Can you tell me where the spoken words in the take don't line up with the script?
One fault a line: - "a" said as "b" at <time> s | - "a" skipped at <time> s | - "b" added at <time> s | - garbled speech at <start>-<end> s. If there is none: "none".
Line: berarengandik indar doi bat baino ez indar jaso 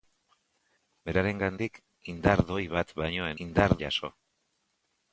none